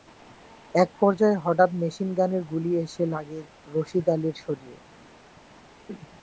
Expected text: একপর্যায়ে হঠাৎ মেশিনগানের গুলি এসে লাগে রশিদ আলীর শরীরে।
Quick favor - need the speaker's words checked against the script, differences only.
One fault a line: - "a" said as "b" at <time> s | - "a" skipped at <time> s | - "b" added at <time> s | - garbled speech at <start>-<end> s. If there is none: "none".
none